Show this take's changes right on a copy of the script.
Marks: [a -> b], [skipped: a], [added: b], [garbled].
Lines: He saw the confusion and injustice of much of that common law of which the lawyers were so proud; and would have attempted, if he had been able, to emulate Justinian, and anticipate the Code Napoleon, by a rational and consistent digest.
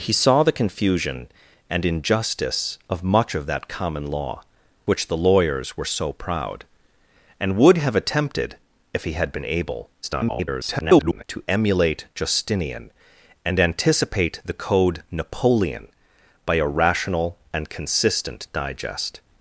He saw the confusion and injustice of much of that common law [skipped: of] which the lawyers were so proud; and would have attempted, if he had been able, [garbled] to emulate Justinian, and anticipate the Code Napoleon, by a rational and consistent digest.